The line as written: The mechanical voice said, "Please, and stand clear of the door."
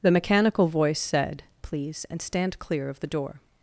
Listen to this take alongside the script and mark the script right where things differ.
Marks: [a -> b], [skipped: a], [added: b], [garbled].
The mechanical voice said, "Please, and stand clear of the door."